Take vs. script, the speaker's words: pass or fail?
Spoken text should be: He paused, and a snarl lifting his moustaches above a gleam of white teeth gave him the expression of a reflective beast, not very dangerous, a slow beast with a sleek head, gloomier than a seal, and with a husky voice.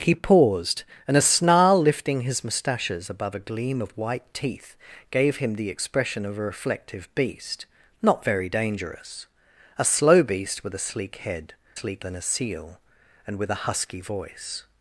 fail